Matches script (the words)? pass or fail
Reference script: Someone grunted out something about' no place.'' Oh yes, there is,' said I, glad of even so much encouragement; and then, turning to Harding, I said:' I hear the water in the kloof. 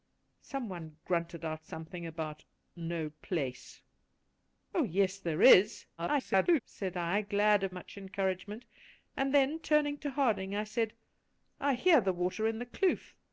fail